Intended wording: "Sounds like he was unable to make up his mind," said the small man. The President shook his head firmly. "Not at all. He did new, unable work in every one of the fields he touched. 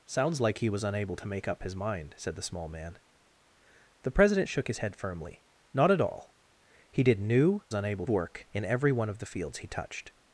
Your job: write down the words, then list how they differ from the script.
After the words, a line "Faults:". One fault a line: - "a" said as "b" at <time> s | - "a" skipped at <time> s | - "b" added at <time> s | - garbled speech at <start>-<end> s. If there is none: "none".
"Sounds like he was unable to make up his mind," said the small man. The President shook his head firmly. "Not at all. He did new, unable work in every one of the fields he touched.
Faults:
none